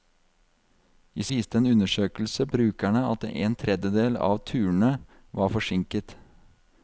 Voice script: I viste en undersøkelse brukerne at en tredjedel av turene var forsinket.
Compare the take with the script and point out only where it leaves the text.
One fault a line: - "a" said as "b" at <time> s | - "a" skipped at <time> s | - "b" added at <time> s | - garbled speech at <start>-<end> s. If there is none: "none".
none